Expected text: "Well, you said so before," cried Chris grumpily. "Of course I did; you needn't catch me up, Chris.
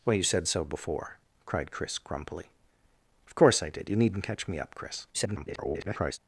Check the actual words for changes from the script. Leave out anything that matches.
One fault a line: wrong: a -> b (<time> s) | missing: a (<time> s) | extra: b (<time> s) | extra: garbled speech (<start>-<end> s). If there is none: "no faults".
extra: garbled speech (5.1-6.2 s)